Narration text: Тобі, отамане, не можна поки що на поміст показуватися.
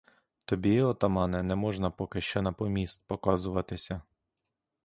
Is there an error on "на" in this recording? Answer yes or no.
no